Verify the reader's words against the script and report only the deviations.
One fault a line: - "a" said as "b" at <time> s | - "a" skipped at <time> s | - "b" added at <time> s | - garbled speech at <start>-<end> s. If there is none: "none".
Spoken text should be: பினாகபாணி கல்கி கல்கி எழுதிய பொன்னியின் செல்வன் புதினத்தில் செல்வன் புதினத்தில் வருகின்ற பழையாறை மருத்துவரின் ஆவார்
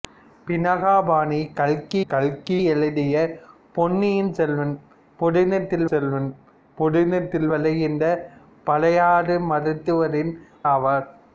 none